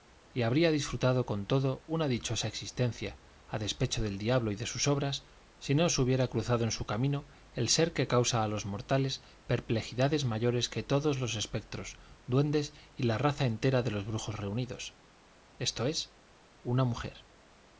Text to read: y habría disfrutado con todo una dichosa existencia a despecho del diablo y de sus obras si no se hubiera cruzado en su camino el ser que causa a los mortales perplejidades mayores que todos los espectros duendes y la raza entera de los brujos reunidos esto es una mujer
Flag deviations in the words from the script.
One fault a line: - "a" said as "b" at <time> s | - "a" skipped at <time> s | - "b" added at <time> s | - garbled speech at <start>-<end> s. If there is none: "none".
none